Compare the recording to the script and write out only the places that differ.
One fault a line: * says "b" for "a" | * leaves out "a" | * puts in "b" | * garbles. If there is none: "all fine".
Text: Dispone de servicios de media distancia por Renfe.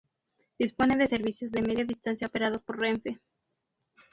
* puts in "operados"